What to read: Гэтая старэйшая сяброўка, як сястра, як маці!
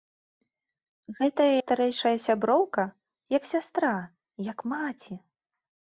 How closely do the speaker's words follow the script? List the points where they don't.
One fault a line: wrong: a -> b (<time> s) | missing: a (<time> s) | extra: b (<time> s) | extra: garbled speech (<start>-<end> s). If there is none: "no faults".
no faults